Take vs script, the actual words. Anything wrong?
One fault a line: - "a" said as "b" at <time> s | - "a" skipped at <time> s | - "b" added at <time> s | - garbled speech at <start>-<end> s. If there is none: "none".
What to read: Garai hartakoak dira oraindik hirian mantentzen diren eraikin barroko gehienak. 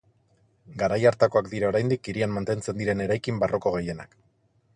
none